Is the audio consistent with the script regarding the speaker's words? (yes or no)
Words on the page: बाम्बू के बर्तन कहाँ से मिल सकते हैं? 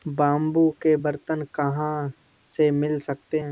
yes